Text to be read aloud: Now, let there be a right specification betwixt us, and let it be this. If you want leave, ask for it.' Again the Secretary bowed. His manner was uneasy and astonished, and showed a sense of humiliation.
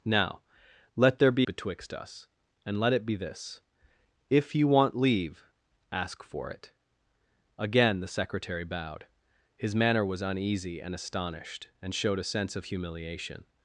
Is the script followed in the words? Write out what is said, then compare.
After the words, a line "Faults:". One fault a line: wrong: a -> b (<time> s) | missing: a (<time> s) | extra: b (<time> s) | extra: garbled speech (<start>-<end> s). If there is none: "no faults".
Now, let there be betwixt us, and let it be this. If you want leave, ask for it.' Again the Secretary bowed. His manner was uneasy and astonished, and showed a sense of humiliation.
Faults:
missing: a right specification (1.5 s)